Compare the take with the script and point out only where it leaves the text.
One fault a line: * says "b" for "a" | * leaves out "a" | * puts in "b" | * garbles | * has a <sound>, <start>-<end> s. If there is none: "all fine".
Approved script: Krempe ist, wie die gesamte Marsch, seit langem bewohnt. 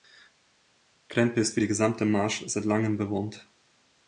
all fine